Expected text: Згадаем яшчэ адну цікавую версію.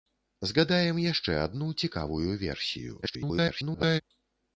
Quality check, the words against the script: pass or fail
fail